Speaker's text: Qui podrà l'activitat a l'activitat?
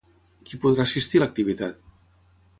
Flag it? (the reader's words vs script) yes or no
yes